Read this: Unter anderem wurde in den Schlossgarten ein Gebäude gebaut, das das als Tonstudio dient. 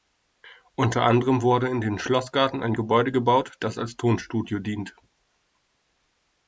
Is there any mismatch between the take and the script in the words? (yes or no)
yes